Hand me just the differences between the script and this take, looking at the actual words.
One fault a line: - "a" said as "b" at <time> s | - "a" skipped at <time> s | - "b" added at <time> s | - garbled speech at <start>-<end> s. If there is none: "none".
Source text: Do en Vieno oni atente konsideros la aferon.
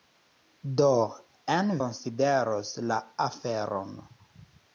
- "Vieno oni atente" skipped at 1.7 s